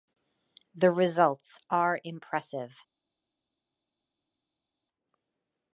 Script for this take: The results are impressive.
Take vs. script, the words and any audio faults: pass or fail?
pass